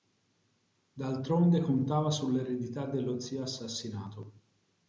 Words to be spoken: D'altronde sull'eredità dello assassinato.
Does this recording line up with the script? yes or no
no